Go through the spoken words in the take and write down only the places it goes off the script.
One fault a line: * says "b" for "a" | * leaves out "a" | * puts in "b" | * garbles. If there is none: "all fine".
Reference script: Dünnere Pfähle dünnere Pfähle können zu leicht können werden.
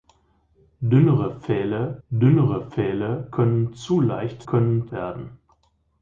all fine